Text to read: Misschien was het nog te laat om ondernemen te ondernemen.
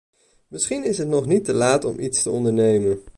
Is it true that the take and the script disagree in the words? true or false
true